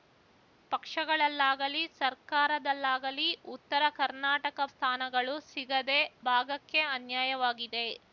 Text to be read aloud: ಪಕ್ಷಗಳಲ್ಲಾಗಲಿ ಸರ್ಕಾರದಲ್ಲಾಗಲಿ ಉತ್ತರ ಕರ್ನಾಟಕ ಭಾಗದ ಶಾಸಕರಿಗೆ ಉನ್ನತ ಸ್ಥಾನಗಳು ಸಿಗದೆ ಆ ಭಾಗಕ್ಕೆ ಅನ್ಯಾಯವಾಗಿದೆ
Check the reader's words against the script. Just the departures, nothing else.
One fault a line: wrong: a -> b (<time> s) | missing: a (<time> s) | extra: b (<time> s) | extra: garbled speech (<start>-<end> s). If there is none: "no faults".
missing: ಭಾಗದ ಶಾಸಕರಿಗೆ ಉನ್ನತ (4.6 s)
missing: ಆ (6.0 s)